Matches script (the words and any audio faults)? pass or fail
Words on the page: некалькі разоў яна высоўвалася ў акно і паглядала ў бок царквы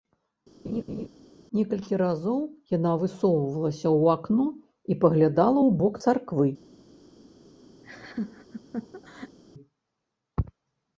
fail